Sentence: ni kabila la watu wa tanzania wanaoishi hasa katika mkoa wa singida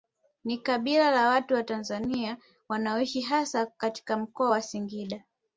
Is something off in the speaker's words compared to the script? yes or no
no